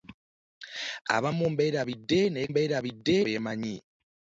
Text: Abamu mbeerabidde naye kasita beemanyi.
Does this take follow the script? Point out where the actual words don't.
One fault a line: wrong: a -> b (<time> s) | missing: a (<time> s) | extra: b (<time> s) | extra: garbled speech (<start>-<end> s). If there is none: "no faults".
wrong: kasita -> mbeerabidde (2.5 s)